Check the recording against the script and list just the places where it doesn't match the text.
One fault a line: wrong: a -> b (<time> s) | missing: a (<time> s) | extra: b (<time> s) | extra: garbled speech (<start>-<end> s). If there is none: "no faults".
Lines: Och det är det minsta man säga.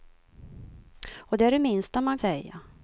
no faults